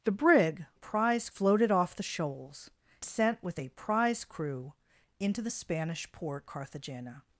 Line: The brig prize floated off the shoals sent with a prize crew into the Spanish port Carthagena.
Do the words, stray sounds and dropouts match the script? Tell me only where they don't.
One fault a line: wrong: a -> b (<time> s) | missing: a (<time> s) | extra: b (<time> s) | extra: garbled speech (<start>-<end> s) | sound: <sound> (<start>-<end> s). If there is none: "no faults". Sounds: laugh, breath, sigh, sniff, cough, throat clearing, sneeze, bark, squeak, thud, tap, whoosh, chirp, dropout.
no faults